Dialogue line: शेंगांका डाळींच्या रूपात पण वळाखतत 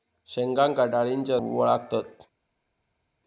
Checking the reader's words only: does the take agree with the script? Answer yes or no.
no